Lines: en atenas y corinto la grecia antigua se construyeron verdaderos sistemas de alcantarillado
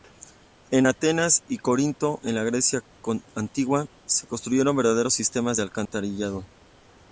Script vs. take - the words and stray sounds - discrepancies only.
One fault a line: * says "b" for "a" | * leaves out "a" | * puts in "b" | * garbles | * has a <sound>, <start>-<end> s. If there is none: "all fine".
* puts in "en"
* has a dropout, 5.9-5.9 s